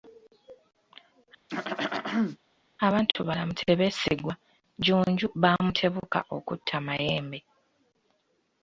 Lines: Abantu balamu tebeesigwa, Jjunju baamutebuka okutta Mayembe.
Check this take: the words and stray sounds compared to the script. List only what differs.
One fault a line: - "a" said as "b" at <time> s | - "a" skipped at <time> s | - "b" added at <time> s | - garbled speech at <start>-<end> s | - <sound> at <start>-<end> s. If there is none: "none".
- throat clearing at 1.5-2.4 s